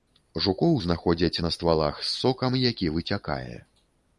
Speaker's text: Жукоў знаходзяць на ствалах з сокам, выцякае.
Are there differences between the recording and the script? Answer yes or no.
yes